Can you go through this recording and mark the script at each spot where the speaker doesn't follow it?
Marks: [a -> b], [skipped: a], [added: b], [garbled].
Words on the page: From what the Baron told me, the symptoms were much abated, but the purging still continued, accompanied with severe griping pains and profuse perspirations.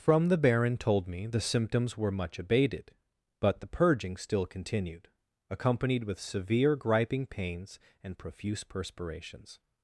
From [skipped: what] the Baron told me, the symptoms were much abated, but the purging still continued, accompanied with severe griping pains and profuse perspirations.